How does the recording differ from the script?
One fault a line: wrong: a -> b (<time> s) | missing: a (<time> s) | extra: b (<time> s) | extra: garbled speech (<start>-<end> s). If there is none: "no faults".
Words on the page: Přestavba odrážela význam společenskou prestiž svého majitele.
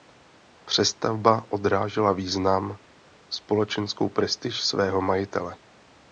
no faults